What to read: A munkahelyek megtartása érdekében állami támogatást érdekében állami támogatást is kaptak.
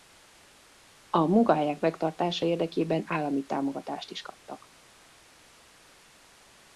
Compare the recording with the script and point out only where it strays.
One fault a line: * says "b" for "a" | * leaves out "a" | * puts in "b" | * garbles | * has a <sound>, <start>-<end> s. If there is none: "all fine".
* leaves out "érdekében állami támogatást"